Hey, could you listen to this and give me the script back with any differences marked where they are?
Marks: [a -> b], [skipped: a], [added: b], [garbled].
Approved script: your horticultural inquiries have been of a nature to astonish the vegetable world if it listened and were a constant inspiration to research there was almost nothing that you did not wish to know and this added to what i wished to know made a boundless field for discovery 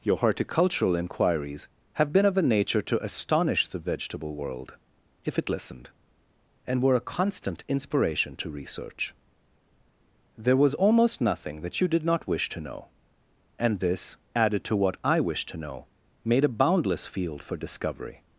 your horticultural inquiries have been of a nature to astonish the vegetable world if it listened and were a constant inspiration to research there was almost nothing that you did not wish to know and this added to what i wished to know made a boundless field for discovery